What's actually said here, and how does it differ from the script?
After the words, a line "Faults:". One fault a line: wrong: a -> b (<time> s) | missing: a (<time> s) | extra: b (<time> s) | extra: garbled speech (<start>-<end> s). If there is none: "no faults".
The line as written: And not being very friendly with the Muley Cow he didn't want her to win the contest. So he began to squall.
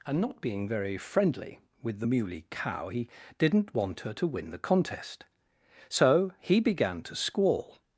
And not being very friendly with the Muley Cow he didn't want her to win the contest. So he began to squall.
Faults:
no faults